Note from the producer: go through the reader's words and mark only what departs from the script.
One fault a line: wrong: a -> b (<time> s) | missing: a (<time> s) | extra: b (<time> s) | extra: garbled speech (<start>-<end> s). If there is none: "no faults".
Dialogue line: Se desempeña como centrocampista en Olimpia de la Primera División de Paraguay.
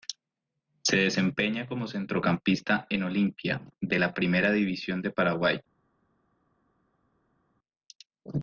no faults